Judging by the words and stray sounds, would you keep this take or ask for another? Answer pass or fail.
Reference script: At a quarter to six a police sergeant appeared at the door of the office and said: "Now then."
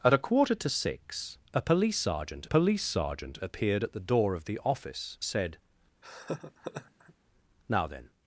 fail